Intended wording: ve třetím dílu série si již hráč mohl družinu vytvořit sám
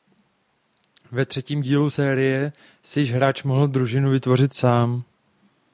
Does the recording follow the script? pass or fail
pass